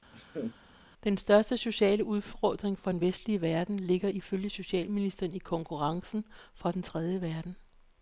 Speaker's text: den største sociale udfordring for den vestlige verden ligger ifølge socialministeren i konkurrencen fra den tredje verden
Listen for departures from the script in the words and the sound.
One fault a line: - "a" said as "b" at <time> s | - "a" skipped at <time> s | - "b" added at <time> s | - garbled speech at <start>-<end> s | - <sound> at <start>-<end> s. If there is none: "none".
- laugh at 0.1-0.6 s